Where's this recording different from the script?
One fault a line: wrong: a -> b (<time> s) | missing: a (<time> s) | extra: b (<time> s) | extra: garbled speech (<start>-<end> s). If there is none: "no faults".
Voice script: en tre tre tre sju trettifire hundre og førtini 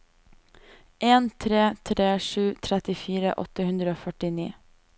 missing: tre (2.1 s)
extra: åtte (3.5 s)